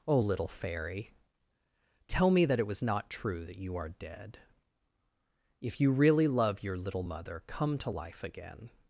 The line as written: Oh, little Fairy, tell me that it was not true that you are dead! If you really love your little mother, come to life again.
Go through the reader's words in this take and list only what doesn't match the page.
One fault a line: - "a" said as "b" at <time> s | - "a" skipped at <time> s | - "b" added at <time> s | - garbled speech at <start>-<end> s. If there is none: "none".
none